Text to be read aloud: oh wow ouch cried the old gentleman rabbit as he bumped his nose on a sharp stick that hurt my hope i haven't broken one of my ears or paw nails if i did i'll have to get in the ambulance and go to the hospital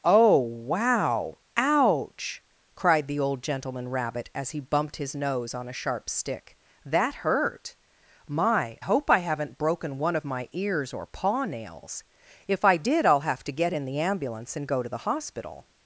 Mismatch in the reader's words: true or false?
false